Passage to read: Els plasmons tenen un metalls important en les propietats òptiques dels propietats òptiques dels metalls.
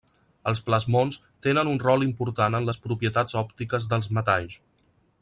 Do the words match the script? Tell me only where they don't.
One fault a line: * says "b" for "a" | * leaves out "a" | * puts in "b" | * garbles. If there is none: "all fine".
* says "rol" for "metalls"
* leaves out "propietats òptiques dels"